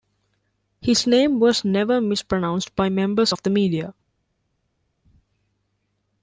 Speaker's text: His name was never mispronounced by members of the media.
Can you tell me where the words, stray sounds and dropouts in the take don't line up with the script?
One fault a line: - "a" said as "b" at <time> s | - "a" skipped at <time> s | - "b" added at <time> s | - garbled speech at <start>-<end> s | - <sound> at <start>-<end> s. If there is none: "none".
none